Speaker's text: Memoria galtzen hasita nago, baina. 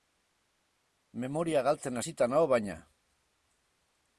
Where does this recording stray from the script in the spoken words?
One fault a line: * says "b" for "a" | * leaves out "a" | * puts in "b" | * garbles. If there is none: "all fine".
all fine